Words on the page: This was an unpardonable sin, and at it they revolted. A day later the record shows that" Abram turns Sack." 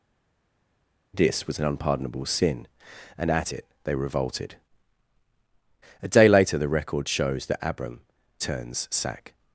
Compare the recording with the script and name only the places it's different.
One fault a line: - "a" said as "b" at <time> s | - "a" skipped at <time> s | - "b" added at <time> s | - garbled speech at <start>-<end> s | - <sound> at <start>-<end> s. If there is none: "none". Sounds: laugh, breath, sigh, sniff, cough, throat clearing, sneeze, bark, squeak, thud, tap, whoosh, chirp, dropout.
none